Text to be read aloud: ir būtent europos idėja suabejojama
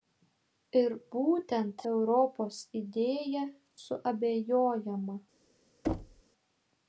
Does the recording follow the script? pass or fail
pass